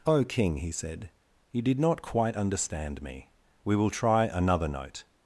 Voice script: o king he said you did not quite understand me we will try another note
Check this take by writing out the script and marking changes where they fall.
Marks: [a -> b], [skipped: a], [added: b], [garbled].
o king he said you did not quite understand me we will try another note